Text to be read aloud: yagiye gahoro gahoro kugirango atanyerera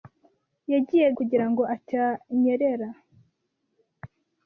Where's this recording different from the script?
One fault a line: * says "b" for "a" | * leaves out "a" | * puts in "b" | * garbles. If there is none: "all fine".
* leaves out "gahoro gahoro"